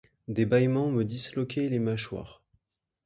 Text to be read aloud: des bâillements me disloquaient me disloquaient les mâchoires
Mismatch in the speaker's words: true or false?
true